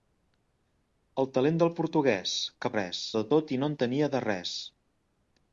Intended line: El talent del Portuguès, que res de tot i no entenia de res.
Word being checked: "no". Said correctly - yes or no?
yes